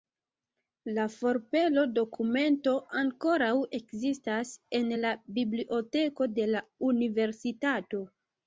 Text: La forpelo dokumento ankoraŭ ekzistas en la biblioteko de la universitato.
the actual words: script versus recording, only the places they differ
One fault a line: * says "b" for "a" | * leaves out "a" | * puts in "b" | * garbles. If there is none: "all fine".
all fine